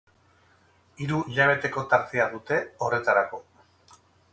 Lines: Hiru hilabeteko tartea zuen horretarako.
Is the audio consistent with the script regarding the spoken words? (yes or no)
no